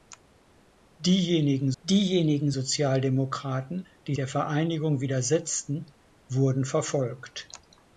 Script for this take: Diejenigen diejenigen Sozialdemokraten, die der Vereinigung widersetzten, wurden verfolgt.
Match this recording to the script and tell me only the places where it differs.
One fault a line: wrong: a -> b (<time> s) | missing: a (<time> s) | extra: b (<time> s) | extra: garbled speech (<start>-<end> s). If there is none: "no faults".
no faults